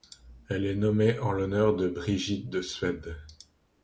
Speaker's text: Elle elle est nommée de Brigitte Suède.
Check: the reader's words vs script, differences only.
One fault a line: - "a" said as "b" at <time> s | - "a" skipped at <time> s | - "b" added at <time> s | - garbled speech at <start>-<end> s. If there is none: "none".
- "elle" skipped at 0.7 s
- "en l'honneur" added at 1.2 s
- "de" added at 2.5 s